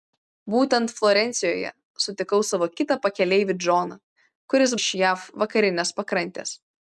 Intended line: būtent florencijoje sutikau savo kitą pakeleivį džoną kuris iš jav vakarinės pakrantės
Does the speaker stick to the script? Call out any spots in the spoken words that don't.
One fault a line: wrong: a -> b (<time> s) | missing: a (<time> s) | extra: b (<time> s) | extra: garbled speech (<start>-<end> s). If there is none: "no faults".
no faults